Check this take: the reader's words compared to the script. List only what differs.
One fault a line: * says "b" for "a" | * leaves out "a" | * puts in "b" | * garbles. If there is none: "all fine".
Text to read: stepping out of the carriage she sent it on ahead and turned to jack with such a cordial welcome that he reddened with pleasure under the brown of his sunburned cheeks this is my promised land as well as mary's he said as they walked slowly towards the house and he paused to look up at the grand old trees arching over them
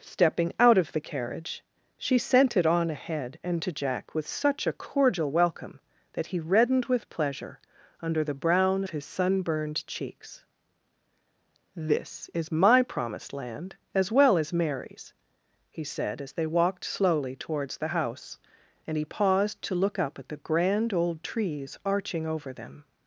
* leaves out "turned"
* leaves out "of"